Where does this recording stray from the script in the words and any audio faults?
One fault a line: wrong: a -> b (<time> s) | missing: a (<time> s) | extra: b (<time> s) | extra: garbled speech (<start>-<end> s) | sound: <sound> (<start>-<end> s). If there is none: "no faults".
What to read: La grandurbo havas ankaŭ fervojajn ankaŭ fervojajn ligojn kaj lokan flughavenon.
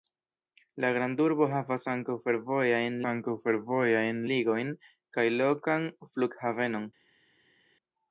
no faults